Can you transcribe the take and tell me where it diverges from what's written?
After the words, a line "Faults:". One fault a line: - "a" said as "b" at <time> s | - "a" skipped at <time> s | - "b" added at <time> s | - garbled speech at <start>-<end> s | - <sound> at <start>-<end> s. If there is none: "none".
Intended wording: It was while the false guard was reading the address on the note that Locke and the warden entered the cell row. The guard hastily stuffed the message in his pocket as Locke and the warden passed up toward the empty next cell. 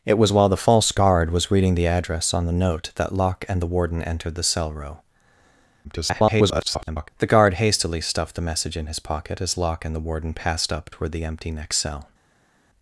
It was while the false guard was reading the address on the note that Locke and the warden entered the cell row. [garbled] The guard hastily stuffed the message in his pocket as Locke and the warden passed up toward the empty next cell.
Faults:
- garbled speech at 5.8-7.1 s